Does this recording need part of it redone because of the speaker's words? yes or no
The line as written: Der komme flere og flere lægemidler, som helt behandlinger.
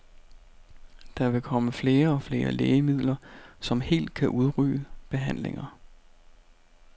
yes